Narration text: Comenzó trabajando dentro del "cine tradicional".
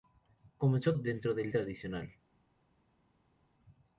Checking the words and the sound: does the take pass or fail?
fail